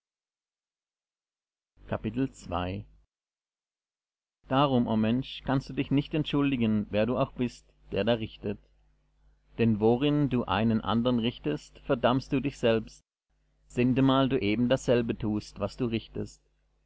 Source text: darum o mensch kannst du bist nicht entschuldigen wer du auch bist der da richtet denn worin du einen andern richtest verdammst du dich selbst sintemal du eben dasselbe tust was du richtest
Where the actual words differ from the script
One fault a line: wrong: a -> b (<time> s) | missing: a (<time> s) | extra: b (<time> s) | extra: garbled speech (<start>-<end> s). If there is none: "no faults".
wrong: bist -> dich (5.7 s)